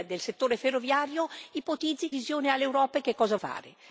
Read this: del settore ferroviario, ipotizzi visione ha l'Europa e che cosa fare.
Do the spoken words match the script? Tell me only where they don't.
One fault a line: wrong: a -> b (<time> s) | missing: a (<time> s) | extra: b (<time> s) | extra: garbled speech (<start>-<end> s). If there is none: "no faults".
no faults